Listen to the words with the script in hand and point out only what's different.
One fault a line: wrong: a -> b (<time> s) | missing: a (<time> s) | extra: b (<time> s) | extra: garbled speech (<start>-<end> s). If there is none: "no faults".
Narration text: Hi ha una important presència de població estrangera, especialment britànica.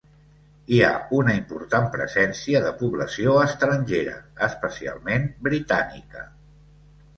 no faults